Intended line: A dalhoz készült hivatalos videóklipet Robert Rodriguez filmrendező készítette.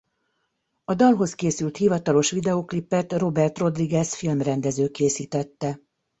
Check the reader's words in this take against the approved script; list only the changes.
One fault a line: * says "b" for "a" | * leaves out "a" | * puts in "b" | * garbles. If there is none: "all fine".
all fine